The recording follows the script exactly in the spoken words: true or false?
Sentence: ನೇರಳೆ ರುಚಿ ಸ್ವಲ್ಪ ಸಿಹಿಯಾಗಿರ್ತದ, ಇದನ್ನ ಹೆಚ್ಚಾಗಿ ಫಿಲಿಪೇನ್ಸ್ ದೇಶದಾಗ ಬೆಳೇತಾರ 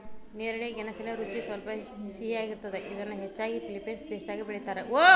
false